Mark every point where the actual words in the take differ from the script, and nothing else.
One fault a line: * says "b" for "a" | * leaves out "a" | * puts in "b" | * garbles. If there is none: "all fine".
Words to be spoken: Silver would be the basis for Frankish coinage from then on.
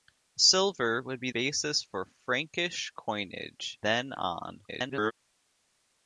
* leaves out "the"
* leaves out "from"
* garbles